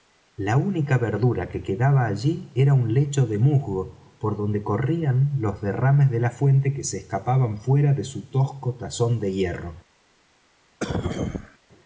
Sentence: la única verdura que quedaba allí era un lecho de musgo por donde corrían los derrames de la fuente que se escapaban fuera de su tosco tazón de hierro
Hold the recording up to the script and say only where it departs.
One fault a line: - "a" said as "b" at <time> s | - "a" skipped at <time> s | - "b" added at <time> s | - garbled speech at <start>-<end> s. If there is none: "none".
none